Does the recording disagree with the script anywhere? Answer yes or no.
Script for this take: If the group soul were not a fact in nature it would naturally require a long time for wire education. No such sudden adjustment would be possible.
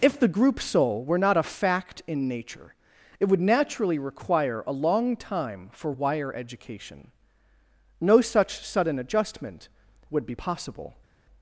no